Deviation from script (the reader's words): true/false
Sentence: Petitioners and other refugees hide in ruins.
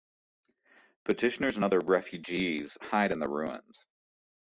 true